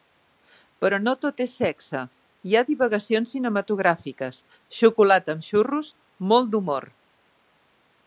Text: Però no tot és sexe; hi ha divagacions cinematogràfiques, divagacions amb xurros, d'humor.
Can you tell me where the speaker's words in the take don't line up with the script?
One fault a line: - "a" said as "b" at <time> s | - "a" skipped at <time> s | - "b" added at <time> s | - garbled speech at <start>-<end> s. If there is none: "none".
- "divagacions" said as "xocolata" at 4.8 s
- "molt" added at 6.3 s